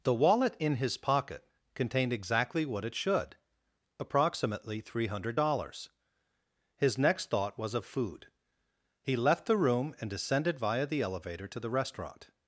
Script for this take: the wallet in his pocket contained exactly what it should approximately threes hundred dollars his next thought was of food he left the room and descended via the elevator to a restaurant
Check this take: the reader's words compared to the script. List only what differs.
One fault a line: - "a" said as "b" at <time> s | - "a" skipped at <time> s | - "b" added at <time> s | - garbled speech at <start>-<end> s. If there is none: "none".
- "threes" said as "three" at 4.8 s
- "a" said as "the" at 11.6 s